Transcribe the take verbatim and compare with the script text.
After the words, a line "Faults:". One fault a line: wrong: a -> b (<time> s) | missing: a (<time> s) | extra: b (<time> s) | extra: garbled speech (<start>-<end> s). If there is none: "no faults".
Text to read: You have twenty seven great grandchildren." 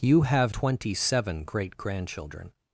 You have twenty seven great grandchildren."
Faults:
no faults